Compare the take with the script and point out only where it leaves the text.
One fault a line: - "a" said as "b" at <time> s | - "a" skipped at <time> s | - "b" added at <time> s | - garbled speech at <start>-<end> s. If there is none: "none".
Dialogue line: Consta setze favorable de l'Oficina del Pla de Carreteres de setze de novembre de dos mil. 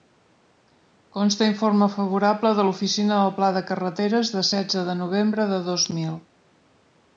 - "setze" said as "informe" at 1.5 s